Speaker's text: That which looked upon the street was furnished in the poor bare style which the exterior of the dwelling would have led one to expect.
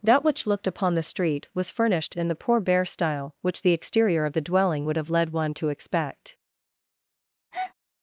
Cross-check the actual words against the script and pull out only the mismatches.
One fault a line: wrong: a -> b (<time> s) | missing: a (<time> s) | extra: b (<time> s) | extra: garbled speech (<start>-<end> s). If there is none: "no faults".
no faults